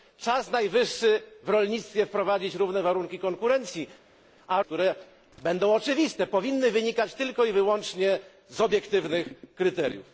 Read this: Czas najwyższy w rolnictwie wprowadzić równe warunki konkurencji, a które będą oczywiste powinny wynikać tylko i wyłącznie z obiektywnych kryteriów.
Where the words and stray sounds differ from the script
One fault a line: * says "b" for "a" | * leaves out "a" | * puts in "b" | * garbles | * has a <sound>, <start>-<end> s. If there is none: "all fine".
all fine